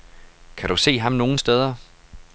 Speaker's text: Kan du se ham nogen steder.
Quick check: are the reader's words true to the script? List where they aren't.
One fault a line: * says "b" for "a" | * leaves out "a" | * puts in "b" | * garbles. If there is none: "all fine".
all fine